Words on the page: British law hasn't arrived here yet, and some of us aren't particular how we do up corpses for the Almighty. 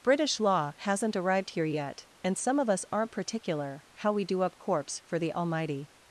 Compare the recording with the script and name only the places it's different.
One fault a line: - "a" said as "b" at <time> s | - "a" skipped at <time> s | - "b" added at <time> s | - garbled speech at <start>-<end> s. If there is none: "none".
- "corpses" said as "corpse" at 4.6 s